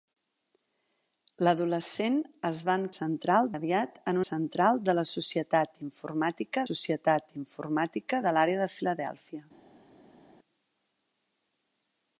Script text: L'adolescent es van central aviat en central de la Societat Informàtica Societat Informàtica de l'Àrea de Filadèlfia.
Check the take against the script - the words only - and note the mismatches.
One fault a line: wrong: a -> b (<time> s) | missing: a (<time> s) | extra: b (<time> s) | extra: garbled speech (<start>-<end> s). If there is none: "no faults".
no faults